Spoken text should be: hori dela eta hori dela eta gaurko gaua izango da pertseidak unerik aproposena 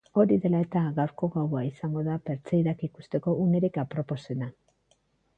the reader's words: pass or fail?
fail